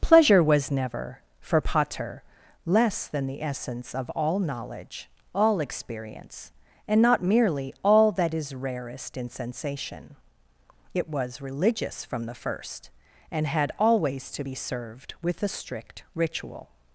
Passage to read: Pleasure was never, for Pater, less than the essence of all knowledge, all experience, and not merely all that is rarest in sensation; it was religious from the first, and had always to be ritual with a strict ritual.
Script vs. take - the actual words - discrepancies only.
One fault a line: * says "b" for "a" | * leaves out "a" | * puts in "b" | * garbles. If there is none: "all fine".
* says "served" for "ritual"